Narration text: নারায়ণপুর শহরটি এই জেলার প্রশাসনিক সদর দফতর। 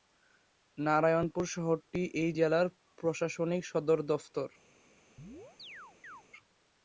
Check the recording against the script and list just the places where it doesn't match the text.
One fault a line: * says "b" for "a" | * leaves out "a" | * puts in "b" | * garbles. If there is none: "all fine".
all fine